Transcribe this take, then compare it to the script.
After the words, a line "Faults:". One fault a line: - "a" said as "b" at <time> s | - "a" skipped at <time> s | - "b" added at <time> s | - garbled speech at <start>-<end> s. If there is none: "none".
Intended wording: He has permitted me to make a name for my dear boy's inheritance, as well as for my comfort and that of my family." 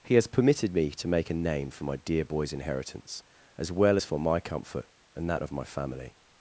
He has permitted me to make a name for my dear boy's inheritance, as well as for my comfort and that of my family."
Faults:
none